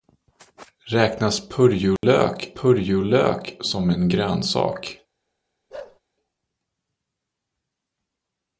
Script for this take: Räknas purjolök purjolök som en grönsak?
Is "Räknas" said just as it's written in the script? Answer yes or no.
yes